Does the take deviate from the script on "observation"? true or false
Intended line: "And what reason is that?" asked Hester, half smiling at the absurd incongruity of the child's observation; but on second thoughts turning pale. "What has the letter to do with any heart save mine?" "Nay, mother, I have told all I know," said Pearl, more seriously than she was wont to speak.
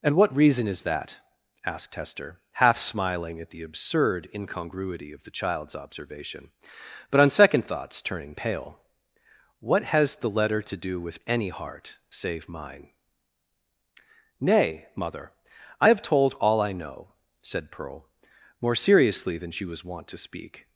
false